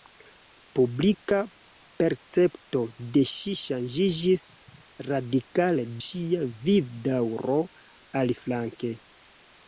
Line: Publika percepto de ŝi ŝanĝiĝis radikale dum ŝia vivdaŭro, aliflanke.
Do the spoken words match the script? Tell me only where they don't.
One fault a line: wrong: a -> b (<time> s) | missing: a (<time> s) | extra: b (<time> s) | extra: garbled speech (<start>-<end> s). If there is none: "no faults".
missing: dum (5.9 s)